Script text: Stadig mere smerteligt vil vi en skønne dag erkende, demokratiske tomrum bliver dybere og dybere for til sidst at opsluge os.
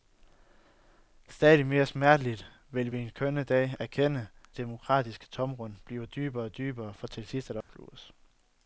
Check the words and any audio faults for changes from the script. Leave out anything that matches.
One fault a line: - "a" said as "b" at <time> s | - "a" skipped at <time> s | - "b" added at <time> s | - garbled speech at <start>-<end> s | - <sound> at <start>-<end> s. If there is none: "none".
- dropout at 7.6-7.7 s